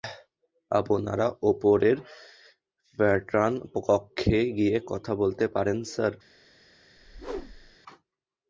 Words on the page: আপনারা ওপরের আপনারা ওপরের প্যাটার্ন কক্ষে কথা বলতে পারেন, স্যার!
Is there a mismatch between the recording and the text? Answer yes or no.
yes